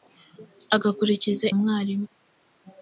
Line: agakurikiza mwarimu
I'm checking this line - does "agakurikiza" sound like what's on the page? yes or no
yes